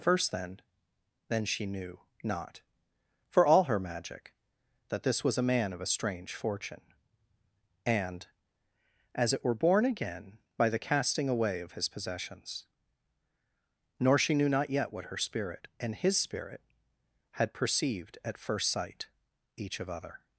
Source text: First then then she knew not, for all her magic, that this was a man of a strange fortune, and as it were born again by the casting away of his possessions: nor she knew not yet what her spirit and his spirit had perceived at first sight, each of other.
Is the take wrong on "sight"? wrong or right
right